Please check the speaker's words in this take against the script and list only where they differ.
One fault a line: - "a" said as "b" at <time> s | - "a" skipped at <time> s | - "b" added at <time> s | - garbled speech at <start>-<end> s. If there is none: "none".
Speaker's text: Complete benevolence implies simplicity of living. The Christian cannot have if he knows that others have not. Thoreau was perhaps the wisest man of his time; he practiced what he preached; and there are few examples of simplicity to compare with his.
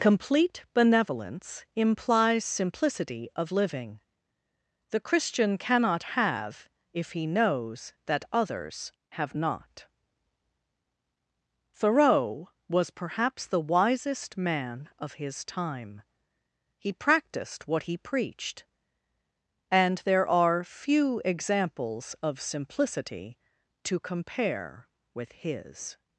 none